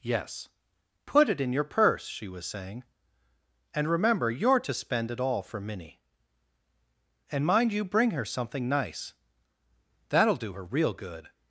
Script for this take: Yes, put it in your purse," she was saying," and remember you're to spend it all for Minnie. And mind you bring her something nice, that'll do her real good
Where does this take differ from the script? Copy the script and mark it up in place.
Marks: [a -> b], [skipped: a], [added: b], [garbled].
Yes, put it in your purse," she was saying," and remember you're to spend it all for Minnie. And mind you bring her something nice, that'll do her real good